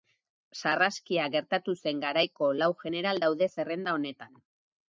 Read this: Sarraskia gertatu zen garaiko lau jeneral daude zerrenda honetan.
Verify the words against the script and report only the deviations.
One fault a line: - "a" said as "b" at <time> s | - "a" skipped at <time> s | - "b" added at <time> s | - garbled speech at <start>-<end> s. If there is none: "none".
none